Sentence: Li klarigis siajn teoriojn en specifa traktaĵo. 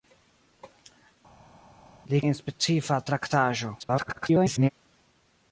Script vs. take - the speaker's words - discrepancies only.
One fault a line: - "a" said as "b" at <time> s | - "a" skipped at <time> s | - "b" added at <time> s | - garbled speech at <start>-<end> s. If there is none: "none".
- "klarigis siajn teoriojn" skipped at 2.2 s
- garbled speech at 3.8-4.7 s